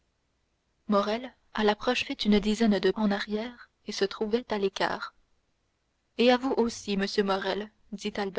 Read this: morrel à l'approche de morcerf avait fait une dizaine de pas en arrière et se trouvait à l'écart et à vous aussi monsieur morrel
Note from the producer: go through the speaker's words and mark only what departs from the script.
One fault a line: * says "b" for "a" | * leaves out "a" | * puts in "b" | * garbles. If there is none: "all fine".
* leaves out "de morcerf avait"
* leaves out "pas"